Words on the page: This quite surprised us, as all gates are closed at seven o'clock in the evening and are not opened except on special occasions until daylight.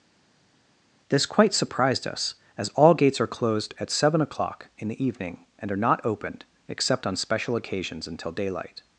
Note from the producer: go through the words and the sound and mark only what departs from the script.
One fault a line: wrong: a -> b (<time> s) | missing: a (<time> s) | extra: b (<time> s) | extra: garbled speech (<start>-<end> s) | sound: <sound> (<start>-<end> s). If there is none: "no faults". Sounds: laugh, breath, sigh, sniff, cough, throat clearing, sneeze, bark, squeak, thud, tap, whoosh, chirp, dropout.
no faults